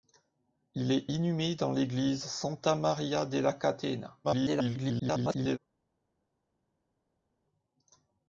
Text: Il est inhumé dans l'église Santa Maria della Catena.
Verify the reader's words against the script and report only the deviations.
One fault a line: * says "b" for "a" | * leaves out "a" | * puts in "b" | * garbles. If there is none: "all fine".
* garbles